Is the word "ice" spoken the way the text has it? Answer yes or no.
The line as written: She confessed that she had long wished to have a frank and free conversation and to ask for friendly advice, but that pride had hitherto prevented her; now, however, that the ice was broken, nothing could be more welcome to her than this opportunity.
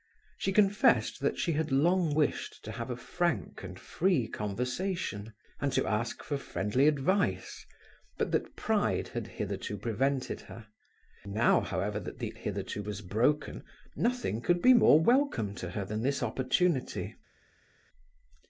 no